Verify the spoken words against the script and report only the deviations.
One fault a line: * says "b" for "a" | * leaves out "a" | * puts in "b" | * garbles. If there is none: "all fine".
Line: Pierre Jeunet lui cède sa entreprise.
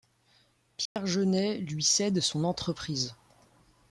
* says "son" for "sa"